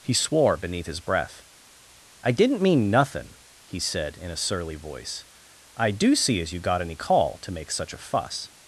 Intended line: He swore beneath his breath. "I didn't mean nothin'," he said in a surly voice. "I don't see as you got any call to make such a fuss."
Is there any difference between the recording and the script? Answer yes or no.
yes